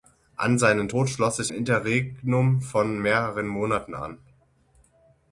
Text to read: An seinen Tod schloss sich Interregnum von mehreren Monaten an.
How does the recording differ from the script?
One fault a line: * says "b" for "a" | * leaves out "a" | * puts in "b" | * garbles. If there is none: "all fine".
all fine